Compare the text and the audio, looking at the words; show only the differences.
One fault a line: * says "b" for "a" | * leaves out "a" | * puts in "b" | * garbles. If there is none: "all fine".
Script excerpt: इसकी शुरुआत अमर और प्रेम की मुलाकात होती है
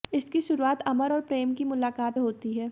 all fine